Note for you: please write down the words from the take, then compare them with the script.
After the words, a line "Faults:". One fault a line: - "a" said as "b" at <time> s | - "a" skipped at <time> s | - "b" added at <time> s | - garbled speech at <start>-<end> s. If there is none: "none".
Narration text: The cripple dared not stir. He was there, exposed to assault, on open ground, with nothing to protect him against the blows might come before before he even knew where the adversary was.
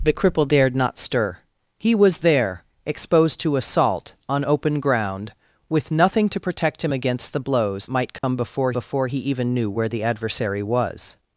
The cripple dared not stir. He was there, exposed to assault, on open ground, with nothing to protect him against the blows might come before before he even knew where the adversary was.
Faults:
none